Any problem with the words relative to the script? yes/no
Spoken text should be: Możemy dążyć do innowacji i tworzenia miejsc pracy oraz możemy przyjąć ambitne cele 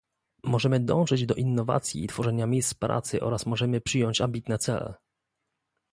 no